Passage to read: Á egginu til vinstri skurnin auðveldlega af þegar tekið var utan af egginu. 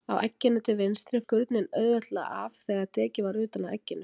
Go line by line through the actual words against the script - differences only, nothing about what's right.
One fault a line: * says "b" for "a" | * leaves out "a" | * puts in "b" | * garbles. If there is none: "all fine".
all fine